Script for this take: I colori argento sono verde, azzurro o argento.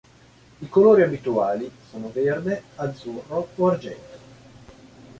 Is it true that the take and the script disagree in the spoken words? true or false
true